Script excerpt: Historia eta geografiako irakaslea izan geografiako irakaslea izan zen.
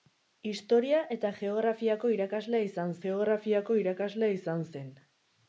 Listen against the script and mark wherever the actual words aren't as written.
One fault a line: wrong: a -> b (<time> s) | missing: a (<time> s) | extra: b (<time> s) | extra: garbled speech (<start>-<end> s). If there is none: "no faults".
no faults